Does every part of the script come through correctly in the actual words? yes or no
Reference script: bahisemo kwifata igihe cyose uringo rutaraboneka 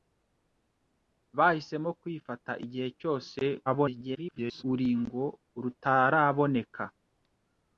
no